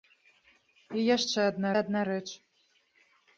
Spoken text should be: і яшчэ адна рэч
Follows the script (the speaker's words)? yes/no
no